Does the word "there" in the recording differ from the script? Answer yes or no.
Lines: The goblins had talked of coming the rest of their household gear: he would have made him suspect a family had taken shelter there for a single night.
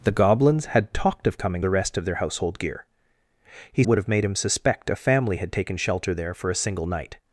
no